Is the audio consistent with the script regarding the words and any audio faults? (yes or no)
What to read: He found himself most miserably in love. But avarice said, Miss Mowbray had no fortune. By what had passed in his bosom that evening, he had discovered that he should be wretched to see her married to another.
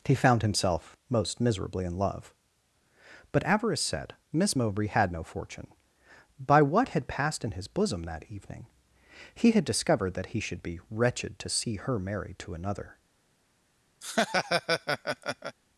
no